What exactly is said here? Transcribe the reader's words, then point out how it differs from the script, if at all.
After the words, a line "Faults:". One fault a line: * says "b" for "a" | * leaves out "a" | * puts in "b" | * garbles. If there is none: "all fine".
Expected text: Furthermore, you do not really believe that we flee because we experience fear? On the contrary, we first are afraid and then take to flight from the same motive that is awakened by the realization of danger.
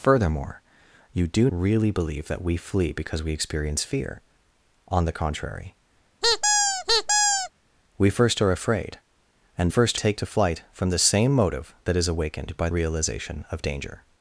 Furthermore, you do really believe that we flee because we experience fear? On the contrary, we first are afraid and first take to flight from the same motive that is awakened by realization of danger.
Faults:
* leaves out "not"
* says "first" for "then"
* leaves out "the"